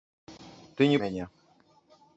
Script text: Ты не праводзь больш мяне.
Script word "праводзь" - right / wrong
wrong